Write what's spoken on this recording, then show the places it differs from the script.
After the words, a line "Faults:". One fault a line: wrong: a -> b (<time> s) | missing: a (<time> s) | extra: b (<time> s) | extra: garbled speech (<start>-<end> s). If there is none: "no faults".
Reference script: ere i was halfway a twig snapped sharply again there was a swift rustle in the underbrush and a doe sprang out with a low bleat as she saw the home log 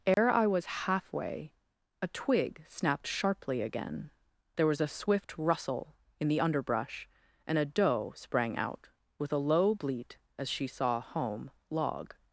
ere i was halfway a twig snapped sharply again there was a swift rustle in the underbrush and a doe sprang out with a low bleat as she saw home log
Faults:
missing: the (11.0 s)